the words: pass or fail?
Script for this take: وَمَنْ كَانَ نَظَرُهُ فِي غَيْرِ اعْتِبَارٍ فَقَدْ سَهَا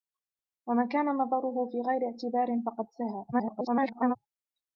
fail